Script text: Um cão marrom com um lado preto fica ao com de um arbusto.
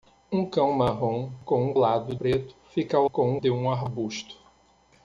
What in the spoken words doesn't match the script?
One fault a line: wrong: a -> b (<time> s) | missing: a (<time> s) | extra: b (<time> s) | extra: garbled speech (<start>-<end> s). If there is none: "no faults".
no faults